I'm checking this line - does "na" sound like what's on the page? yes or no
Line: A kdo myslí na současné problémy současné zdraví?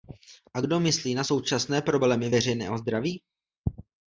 yes